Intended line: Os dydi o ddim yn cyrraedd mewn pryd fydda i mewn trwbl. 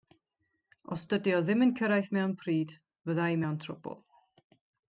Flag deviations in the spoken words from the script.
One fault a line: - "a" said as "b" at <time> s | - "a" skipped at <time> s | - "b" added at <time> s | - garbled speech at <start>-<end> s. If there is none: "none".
none